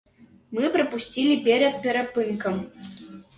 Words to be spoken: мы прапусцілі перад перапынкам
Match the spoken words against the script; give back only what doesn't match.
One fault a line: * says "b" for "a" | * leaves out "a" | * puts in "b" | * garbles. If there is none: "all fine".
all fine